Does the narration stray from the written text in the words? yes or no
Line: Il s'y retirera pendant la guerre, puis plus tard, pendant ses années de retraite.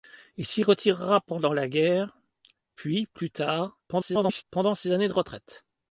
yes